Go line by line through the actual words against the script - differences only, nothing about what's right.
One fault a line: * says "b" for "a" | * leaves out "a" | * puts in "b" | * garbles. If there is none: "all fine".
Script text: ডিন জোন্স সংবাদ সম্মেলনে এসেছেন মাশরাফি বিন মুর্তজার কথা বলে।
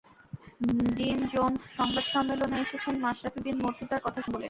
all fine